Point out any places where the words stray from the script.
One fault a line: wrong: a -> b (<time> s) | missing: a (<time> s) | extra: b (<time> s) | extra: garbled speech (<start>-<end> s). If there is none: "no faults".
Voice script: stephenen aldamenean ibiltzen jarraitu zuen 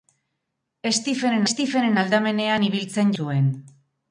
extra: stephenen (1.5 s)
missing: jarraitu (3.1 s)